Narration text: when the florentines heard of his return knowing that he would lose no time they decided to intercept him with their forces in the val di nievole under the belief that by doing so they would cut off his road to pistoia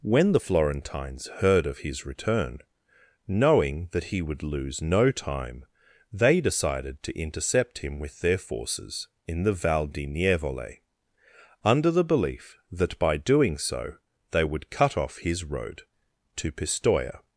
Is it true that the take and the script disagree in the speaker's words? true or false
false